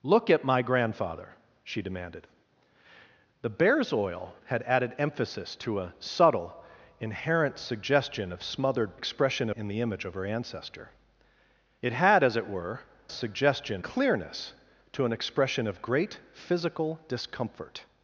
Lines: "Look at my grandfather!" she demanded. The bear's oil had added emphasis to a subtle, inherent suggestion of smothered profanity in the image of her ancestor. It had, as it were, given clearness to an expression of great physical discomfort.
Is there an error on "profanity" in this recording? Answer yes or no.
yes